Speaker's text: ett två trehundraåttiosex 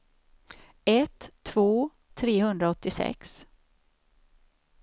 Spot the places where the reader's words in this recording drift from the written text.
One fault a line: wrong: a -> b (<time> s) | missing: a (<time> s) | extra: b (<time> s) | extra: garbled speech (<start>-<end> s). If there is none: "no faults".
no faults